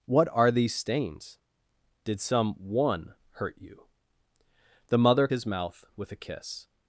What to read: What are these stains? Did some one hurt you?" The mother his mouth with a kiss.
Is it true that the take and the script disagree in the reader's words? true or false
false